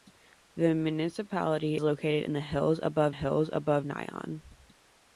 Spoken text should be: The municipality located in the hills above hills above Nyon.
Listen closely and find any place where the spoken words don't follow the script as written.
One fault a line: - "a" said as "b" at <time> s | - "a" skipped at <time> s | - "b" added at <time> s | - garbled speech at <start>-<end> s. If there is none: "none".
none